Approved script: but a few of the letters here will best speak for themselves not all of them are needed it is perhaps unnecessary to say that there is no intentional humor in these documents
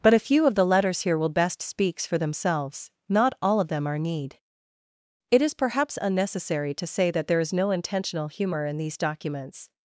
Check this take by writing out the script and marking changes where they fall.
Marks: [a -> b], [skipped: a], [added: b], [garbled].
but a few of the letters here will best [speak -> speaks] for themselves not all of them are [needed -> need] it is perhaps unnecessary to say that there is no intentional humor in these documents